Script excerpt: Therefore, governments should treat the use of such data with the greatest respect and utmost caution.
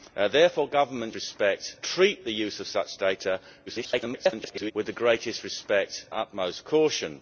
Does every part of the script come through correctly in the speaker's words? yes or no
no